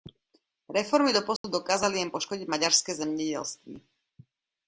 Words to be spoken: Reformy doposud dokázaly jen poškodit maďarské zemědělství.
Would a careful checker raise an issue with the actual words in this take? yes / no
no